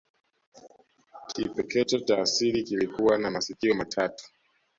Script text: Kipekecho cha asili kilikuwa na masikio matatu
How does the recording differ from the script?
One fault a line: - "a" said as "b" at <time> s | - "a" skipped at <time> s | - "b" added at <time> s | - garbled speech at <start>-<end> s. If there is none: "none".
none